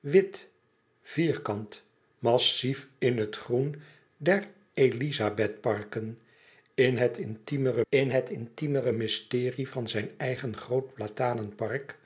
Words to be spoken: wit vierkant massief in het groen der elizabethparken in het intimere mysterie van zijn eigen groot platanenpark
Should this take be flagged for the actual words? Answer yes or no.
yes